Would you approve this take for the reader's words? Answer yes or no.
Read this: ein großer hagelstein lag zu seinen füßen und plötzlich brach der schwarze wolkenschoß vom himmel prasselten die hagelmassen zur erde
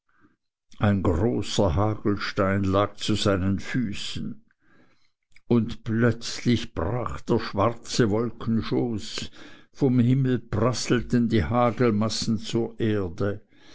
yes